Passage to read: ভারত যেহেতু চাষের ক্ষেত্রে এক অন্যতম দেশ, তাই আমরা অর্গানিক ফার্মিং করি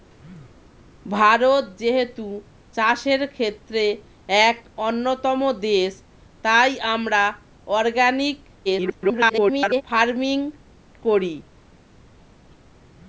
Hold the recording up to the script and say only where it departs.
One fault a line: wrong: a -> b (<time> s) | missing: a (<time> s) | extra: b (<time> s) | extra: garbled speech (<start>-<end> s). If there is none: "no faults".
extra: garbled speech (8.7-9.8 s)